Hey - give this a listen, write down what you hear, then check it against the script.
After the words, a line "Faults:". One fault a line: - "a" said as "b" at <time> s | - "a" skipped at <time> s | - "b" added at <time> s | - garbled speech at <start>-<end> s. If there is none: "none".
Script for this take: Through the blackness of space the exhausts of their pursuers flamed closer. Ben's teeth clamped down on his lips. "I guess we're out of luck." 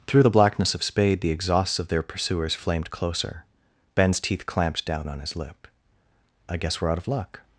Through the blackness of spade the exhausts of their pursuers flamed closer. Ben's teeth clamped down on his lip. "I guess we're out of luck."
Faults:
- "space" said as "spade" at 0.8 s
- "lips" said as "lip" at 5.4 s